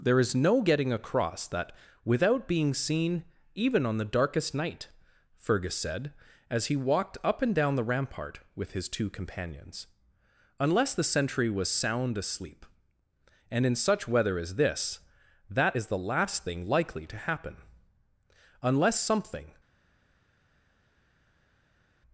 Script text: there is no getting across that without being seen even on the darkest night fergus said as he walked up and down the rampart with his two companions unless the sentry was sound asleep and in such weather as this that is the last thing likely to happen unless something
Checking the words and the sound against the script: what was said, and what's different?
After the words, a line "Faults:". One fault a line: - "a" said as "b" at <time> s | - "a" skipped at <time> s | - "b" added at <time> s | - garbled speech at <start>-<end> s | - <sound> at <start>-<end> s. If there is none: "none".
there is no getting across that without being seen even on the darkest night fergus said as he walked up and down the rampart with his two companions unless the sentry was sound asleep and in such weather as this that is the last thing likely to happen unless something
Faults:
none